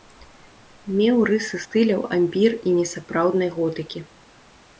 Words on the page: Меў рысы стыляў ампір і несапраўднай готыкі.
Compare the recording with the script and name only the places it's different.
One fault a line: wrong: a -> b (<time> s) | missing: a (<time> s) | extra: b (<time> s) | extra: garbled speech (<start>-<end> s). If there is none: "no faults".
no faults